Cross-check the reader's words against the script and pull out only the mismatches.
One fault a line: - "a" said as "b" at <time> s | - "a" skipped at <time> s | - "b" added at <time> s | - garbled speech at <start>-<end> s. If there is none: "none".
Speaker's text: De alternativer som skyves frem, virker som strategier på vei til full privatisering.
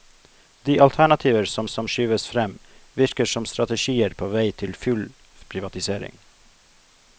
- "som" added at 1.7 s